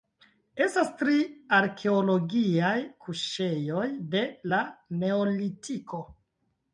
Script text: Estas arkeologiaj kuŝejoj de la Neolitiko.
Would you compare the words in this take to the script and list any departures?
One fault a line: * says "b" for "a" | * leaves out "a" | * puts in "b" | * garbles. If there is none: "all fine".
* puts in "tri"